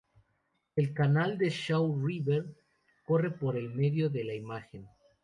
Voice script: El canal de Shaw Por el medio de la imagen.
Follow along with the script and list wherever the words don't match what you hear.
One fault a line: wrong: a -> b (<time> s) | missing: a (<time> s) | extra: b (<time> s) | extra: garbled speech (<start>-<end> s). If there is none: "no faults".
extra: River corre (2.0 s)